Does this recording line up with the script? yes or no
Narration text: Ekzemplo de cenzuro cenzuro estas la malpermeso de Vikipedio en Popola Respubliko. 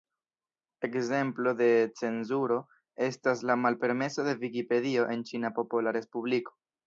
no